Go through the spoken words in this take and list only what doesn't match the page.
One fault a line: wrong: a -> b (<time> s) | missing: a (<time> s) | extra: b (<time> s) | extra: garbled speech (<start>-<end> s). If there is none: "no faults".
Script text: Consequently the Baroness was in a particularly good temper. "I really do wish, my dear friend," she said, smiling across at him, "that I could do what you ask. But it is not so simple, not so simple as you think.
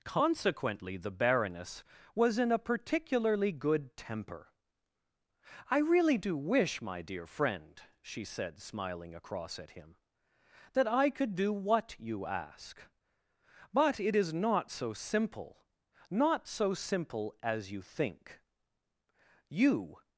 extra: You (19.5 s)